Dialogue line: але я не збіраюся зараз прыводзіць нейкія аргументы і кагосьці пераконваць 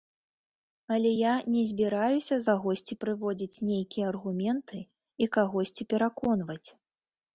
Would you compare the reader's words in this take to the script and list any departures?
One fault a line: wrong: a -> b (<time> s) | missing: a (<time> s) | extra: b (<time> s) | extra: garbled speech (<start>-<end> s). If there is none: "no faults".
wrong: зараз -> кагосьці (2.5 s)